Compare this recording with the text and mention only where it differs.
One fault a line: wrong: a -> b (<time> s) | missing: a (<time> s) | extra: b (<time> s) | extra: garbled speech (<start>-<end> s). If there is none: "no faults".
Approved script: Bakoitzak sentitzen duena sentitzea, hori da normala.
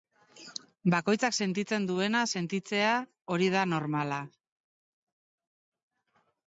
no faults